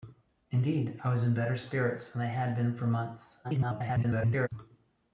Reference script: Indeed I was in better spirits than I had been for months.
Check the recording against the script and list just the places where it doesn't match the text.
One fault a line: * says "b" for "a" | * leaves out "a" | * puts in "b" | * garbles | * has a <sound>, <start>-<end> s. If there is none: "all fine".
* garbles